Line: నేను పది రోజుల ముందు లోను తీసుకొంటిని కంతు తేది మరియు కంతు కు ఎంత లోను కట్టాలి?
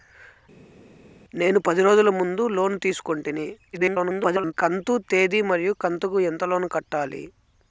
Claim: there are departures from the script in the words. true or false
true